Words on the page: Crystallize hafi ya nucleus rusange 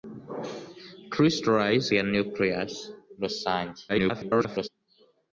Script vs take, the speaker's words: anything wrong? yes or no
yes